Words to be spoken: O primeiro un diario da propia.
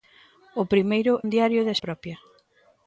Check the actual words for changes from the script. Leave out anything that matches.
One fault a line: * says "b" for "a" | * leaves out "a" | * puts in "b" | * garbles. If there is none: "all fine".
all fine